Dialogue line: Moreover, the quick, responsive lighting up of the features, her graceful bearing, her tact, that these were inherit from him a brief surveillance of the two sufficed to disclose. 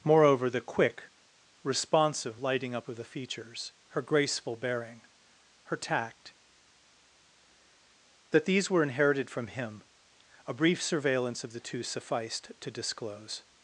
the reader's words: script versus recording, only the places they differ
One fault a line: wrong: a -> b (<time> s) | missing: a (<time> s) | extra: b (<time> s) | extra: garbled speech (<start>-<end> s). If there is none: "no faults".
wrong: inherit -> inherited (8.8 s)